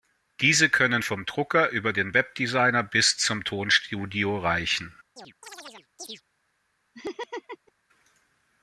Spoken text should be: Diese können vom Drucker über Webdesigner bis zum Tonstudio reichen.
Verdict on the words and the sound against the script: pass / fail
fail